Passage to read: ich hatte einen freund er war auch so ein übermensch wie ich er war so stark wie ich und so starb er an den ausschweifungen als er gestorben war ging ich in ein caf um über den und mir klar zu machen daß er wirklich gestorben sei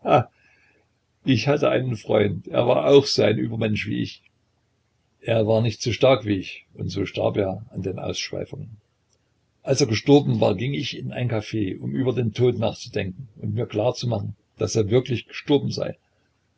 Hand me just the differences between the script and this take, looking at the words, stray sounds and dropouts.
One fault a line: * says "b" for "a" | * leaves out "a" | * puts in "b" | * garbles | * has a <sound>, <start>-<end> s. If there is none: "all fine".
* puts in "nicht"
* puts in "tod nachzudenken"